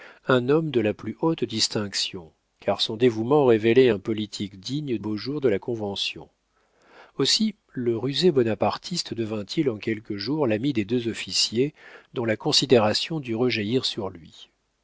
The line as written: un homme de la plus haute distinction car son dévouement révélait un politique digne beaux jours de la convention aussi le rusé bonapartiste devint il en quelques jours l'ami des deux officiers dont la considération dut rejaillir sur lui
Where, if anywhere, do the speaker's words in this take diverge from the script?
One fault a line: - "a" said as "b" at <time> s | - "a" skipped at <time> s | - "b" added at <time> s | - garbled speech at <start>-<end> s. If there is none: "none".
none